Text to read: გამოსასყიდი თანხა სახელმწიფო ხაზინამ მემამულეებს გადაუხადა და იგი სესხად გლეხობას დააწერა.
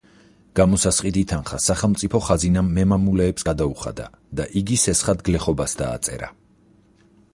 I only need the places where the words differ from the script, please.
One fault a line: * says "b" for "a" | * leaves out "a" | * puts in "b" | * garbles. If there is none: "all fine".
all fine